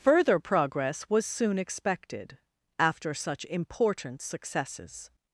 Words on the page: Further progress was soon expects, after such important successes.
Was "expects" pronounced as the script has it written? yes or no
no